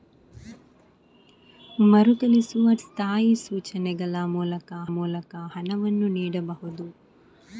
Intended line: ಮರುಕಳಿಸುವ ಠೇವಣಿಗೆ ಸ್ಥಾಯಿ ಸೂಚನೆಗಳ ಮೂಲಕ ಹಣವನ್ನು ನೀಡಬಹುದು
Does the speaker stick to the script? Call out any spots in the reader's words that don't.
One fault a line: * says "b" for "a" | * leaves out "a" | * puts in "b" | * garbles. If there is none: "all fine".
* leaves out "ಠೇವಣಿಗೆ"
* puts in "ಮೂಲಕ"